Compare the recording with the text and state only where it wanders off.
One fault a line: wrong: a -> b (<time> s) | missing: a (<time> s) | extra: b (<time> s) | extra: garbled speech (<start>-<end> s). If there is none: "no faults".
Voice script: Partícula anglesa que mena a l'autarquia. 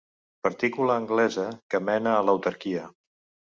no faults